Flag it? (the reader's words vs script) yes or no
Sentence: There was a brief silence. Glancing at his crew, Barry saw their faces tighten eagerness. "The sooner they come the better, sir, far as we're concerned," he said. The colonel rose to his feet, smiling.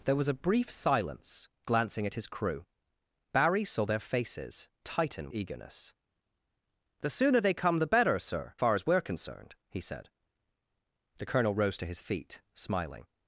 no